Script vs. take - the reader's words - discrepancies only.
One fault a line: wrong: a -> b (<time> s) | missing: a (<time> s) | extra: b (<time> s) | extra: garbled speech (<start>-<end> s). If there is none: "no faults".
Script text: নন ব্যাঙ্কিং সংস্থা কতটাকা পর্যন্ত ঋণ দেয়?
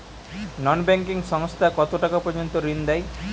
no faults